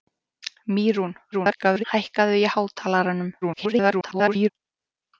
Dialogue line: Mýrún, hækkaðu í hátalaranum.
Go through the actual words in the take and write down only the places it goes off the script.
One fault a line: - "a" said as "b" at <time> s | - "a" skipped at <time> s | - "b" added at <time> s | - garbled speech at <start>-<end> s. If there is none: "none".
- garbled speech at 1.3-1.8 s
- garbled speech at 3.4-4.5 s